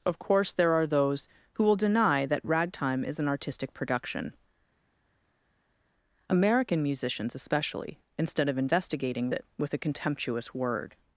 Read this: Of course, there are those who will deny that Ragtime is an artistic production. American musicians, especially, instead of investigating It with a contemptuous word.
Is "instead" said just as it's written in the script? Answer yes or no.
yes